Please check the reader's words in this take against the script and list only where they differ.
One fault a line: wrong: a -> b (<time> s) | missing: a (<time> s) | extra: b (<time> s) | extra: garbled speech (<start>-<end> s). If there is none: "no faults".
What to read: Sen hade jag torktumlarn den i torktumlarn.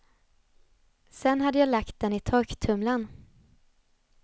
wrong: torktumlarn -> lagt (1.7 s)